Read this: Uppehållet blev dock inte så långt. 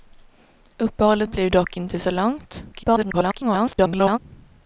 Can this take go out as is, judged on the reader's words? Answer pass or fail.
fail